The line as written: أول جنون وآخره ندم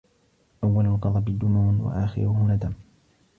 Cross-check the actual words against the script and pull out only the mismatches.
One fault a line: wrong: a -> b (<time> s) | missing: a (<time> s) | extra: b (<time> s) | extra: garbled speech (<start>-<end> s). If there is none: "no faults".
extra: الغضب (0.8 s)